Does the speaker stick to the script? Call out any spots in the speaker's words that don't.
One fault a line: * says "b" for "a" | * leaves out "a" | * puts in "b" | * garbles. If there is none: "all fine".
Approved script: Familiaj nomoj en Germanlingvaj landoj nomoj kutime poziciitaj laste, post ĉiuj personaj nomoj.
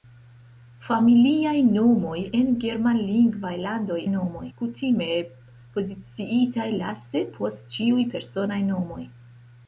all fine